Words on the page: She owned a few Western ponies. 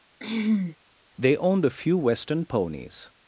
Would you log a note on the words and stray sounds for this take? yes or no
yes